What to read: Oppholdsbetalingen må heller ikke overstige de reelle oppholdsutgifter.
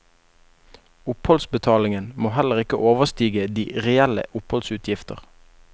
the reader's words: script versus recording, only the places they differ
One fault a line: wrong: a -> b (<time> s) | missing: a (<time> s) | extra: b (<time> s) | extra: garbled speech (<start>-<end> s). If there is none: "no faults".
no faults